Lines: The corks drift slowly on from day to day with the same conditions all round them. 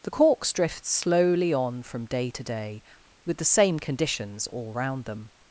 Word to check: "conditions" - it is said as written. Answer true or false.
true